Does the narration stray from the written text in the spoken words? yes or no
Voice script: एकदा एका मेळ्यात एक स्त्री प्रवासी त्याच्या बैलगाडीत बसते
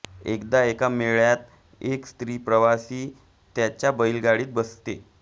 no